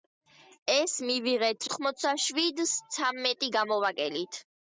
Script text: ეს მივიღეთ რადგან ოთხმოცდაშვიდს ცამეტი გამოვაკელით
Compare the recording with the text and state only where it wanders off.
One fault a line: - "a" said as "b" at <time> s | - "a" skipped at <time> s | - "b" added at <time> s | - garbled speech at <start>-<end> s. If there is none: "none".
- "რადგან" skipped at 1.7 s